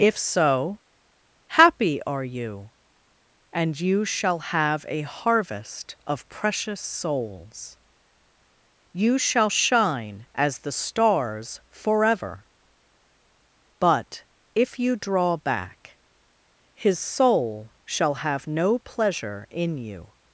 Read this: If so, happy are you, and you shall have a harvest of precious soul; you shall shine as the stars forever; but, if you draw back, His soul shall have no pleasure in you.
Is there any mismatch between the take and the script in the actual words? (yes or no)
yes